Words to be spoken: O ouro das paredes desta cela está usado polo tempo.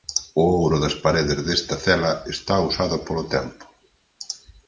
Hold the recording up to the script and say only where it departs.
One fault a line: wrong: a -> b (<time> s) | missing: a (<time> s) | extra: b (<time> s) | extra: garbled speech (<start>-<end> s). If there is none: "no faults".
no faults